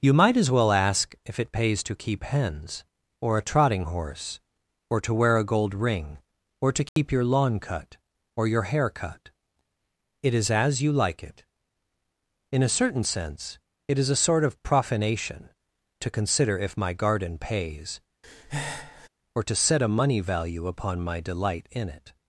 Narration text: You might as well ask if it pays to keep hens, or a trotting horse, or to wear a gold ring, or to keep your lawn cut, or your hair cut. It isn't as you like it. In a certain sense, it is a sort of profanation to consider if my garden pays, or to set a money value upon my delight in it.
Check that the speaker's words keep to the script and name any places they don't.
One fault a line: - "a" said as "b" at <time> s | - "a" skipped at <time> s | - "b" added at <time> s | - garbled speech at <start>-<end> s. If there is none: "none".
- "isn't" said as "is" at 10.3 s